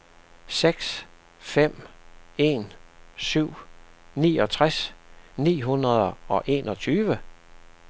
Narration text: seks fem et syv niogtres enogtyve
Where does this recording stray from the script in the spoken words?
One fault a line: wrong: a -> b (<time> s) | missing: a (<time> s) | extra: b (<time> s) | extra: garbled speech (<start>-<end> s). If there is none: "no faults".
wrong: et -> en (2.4 s)
extra: ni hundrede og (5.4 s)